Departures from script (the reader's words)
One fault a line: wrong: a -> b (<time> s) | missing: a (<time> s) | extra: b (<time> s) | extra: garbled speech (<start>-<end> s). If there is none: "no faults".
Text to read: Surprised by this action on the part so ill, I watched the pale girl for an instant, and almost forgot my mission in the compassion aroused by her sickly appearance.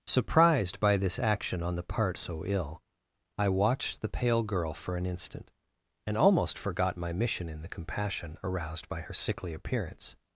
no faults